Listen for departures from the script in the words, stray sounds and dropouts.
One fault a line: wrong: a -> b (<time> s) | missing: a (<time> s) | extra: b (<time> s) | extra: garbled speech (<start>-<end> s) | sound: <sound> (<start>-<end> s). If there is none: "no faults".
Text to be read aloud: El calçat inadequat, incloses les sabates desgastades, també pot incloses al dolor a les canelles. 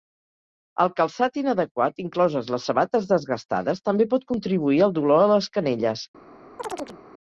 wrong: incloses -> contribuir (4.3 s)
sound: chirp (6.6-7.0 s)